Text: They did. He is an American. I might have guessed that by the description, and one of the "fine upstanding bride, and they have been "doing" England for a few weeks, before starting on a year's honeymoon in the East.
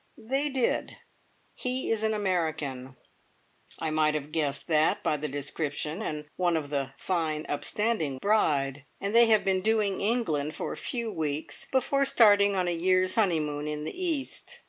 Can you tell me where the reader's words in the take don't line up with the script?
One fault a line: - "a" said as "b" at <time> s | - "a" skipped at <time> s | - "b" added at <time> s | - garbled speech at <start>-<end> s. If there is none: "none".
none